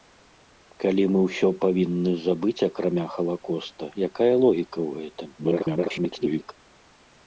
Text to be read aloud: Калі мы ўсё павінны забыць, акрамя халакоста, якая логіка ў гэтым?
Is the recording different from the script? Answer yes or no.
yes